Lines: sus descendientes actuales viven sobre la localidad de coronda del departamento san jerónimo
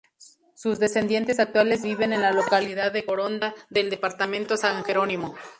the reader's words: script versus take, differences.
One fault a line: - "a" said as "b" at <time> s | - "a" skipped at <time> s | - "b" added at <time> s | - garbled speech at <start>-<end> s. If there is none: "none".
- "sobre" said as "en" at 2.1 s